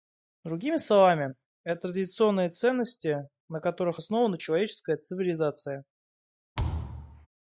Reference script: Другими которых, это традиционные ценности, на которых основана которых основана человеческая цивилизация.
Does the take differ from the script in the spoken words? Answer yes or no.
yes